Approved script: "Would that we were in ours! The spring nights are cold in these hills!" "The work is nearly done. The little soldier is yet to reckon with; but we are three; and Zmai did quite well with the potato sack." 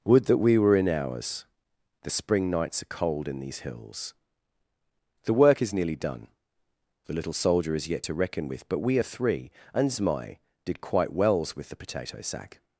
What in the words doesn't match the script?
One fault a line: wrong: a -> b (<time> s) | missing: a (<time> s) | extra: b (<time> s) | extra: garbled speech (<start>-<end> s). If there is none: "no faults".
wrong: well -> wells (11.1 s)